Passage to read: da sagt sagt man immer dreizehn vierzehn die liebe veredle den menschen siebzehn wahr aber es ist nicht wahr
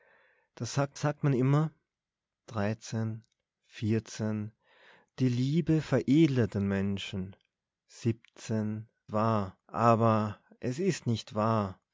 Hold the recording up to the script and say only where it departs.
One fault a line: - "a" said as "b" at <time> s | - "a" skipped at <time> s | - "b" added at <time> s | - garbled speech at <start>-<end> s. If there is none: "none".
none